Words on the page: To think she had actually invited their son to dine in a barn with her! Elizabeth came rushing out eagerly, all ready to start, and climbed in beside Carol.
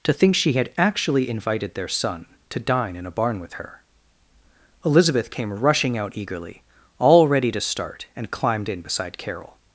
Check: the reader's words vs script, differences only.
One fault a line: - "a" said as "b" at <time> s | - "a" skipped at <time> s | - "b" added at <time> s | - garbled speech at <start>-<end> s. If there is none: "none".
none